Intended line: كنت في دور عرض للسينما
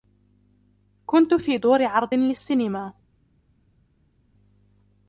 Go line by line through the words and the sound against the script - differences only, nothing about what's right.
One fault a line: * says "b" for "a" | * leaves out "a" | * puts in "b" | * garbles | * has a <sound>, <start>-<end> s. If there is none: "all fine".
all fine